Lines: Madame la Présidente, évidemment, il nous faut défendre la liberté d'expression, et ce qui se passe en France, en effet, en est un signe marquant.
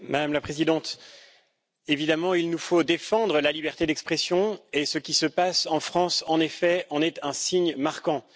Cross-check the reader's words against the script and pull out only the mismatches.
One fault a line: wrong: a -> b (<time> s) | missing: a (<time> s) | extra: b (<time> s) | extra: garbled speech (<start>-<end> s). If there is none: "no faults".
no faults